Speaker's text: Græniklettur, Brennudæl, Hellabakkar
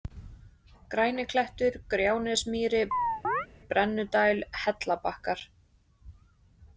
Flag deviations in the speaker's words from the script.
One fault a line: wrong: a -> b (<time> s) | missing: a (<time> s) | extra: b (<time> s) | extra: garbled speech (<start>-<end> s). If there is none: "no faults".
extra: Gjánesmýri (1.9 s)